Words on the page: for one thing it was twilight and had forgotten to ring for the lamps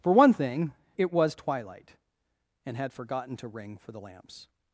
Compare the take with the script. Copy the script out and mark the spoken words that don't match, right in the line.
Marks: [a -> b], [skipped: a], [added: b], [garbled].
for one thing it was twilight and had forgotten to ring for the lamps